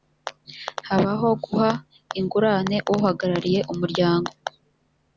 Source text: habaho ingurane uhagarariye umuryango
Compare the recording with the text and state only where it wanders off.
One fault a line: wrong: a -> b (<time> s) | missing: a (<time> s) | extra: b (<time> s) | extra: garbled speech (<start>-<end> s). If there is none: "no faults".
extra: guha (1.4 s)